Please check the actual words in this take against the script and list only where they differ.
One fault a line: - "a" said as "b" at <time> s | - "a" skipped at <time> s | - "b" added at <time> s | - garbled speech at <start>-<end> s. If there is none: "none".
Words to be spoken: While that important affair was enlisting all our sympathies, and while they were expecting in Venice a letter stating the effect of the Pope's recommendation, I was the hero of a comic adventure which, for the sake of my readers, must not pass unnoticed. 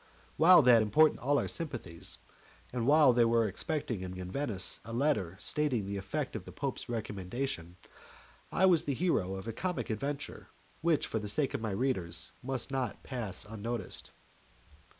- "affair was enlisting" skipped at 1.2 s
- "in" added at 4.2 s